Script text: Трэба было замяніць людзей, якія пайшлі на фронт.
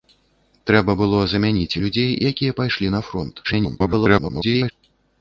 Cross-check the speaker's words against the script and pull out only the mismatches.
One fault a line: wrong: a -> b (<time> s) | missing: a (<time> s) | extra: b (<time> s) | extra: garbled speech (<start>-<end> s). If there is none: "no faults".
extra: garbled speech (3.4-4.7 s)